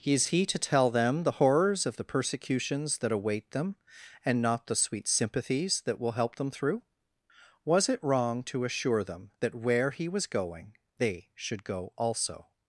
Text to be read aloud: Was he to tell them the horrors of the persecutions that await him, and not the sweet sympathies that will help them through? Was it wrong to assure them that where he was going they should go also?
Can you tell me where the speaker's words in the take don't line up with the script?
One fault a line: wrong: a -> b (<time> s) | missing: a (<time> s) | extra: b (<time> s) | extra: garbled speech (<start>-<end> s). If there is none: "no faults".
wrong: Was -> Is (0.0 s)
wrong: him -> them (3.5 s)